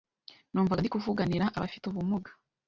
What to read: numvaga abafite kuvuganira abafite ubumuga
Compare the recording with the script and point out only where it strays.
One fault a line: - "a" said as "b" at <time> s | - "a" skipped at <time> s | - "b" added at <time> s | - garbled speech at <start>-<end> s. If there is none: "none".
- "abafite" said as "ndi" at 0.8 s